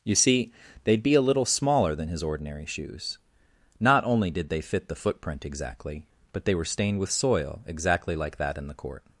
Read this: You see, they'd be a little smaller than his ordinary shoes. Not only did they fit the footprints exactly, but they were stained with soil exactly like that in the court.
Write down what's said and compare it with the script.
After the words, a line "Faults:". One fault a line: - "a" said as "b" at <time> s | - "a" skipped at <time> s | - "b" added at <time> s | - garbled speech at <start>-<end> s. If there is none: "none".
You see, they'd be a little smaller than his ordinary shoes. Not only did they fit the footprint exactly, but they were stained with soil exactly like that in the court.
Faults:
- "footprints" said as "footprint" at 5.0 s